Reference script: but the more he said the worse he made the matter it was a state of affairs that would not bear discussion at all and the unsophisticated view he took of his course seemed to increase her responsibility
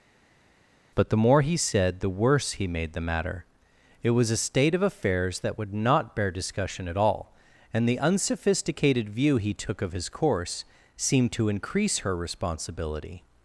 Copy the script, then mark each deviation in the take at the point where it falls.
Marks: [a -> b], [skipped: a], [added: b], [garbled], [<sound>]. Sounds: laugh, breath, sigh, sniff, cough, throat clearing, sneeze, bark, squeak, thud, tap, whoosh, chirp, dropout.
but the more he said the worse he made the matter it was a state of affairs that would not bear discussion at all and the unsophisticated view he took of his course seemed to increase her responsibility